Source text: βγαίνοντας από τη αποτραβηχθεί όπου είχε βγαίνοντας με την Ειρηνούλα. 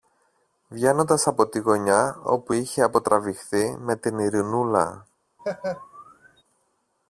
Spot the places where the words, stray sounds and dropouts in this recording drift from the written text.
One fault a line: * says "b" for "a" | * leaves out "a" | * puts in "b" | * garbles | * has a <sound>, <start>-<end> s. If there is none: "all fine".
* says "γωνιά" for "αποτραβηχθεί"
* says "αποτραβηχθεί" for "βγαίνοντας"
* has a laugh, 5.4-6.4 s